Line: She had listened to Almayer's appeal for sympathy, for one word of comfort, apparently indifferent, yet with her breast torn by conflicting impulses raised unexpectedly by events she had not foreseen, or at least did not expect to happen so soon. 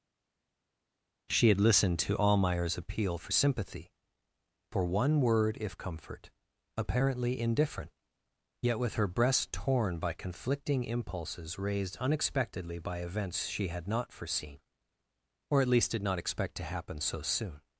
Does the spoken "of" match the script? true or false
false